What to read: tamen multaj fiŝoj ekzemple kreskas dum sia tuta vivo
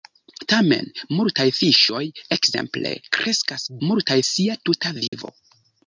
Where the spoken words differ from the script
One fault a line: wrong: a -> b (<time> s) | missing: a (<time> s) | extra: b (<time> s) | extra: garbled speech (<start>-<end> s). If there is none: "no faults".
wrong: dum -> multaj (3.9 s)